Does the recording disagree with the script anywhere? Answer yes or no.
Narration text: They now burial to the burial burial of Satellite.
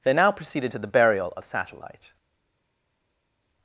yes